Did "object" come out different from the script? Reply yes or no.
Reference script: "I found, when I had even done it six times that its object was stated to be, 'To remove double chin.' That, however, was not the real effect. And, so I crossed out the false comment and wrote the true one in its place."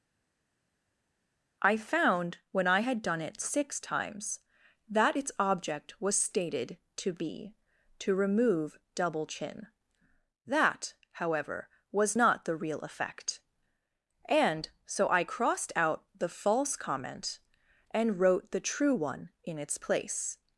no